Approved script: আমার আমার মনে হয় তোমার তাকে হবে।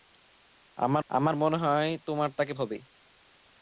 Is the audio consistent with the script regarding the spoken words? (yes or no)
yes